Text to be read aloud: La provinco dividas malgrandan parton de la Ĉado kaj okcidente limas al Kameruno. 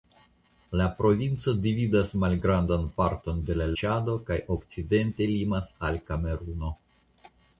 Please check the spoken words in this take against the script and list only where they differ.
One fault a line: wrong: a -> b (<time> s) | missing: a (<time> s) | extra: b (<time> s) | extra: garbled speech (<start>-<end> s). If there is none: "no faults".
no faults